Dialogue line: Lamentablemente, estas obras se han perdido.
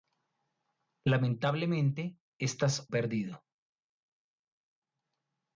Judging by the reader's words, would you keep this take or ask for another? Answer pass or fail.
fail